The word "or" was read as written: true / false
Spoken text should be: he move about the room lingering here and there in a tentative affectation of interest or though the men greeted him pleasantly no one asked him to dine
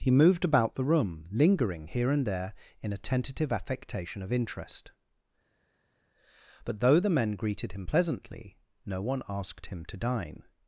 false